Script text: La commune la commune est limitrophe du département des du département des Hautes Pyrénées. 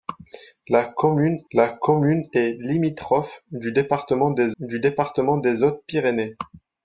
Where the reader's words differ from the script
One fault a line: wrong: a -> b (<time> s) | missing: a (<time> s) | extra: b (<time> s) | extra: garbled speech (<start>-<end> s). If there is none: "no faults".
no faults